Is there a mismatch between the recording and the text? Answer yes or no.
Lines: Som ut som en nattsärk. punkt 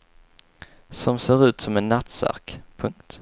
yes